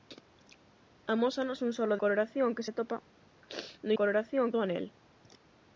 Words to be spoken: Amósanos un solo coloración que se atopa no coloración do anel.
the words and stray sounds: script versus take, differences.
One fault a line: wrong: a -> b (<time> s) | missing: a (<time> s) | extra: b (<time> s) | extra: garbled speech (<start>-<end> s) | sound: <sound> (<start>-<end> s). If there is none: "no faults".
no faults